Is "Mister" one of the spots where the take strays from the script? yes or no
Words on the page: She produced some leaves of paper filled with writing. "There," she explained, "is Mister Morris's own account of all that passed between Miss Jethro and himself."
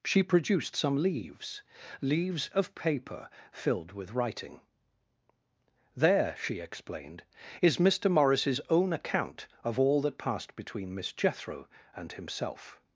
no